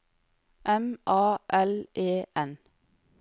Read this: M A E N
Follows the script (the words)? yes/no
no